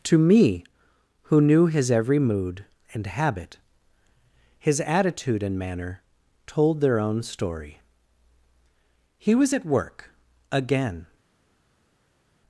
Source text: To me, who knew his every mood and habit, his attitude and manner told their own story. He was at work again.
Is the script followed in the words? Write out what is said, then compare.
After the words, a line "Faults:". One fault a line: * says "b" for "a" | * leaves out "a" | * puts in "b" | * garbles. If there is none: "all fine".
To me, who knew his every mood and habit, his attitude and manner told their own story. He was at work again.
Faults:
all fine